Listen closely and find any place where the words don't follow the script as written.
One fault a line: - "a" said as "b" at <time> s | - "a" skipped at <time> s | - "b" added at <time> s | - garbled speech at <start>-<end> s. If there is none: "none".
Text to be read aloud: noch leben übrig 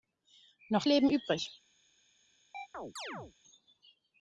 none